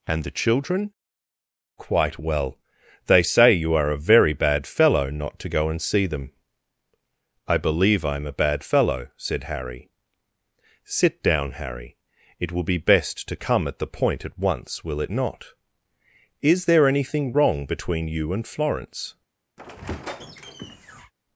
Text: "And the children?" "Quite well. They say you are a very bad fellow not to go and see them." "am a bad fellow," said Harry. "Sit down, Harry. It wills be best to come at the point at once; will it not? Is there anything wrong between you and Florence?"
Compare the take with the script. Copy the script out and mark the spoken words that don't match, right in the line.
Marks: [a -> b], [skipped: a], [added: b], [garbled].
"And the children?" "Quite well. They say you are a very bad fellow not to go and see them." [added: I believe I] "am a bad fellow," said Harry. "Sit down, Harry. It [wills -> will] be best to come at the point at once; will it not? Is there anything wrong between you and Florence?"